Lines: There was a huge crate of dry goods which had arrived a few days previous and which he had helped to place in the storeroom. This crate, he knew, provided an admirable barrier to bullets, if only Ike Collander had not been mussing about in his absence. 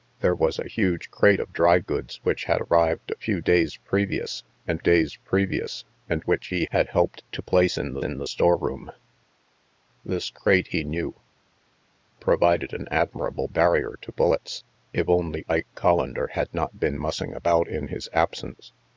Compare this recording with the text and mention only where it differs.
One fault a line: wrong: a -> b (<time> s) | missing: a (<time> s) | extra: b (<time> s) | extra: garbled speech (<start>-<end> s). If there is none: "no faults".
extra: days previous and (4.8 s)
extra: in the (8.0 s)